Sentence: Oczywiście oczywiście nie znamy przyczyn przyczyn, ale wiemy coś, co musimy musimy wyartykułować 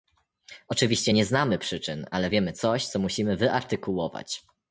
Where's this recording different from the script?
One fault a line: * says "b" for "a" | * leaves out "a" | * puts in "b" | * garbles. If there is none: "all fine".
* leaves out "oczywiście"
* leaves out "przyczyn"
* leaves out "musimy"